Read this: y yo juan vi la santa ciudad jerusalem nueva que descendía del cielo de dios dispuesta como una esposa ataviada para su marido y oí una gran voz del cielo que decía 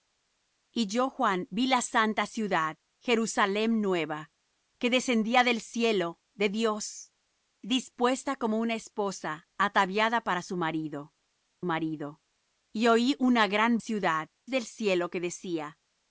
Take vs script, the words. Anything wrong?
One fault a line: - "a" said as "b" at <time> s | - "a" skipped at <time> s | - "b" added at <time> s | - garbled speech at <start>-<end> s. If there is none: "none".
- "marido" added at 11.6 s
- "voz" said as "ciudad" at 13.8 s